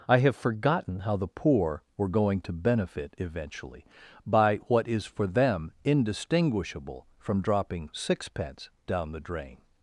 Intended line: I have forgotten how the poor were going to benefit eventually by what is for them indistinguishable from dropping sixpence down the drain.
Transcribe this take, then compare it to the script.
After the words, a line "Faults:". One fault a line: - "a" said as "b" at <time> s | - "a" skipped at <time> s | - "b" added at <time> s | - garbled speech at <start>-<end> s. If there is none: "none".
I have forgotten how the poor were going to benefit eventually by what is for them indistinguishable from dropping sixpence down the drain.
Faults:
none